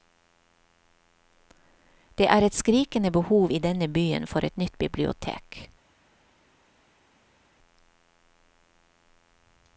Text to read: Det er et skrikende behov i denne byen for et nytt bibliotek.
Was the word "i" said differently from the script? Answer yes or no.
no